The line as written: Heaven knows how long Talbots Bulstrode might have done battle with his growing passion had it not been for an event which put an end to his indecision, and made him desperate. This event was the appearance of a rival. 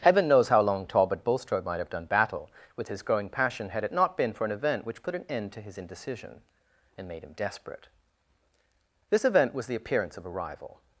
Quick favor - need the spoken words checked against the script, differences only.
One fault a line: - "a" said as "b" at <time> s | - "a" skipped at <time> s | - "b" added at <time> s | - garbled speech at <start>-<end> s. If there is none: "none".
- "Talbots" said as "Talbot" at 0.9 s